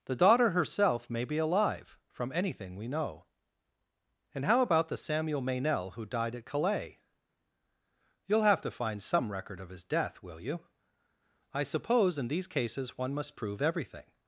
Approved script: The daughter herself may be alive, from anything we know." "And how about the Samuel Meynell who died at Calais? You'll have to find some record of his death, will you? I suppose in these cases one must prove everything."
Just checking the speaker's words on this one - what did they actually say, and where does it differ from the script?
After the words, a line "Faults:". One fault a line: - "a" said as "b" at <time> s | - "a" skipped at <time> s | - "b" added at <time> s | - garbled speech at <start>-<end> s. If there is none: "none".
The daughter herself may be alive, from anything we know." "And how about the Samuel Meynell who died at Calais? You'll have to find some record of his death, will you? I suppose in these cases one must prove everything."
Faults:
none